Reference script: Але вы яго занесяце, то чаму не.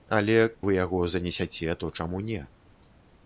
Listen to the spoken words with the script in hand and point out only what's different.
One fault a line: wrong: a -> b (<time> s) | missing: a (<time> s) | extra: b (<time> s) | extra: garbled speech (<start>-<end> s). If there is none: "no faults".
no faults